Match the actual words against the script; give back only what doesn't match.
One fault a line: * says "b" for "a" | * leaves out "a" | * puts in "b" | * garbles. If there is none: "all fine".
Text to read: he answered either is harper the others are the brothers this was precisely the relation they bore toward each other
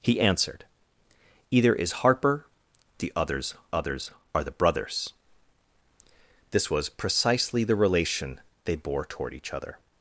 * puts in "others"